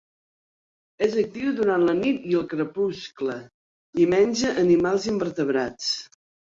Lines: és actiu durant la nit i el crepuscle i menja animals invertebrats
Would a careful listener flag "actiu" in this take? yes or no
no